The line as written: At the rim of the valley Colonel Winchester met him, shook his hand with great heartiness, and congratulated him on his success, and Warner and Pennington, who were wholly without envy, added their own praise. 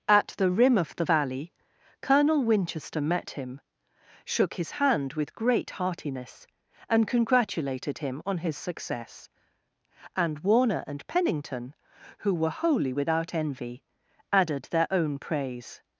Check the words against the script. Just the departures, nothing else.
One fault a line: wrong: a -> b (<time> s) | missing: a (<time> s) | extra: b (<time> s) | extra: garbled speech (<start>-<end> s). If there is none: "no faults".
no faults